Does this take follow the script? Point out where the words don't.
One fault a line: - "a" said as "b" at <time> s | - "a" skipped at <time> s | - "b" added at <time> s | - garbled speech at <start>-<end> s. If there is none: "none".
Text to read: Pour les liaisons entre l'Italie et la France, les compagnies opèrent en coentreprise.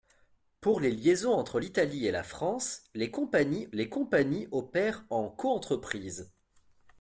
- "les compagnies" added at 3.7 s